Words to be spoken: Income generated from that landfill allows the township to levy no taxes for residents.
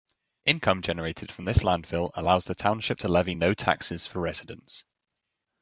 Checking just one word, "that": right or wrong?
wrong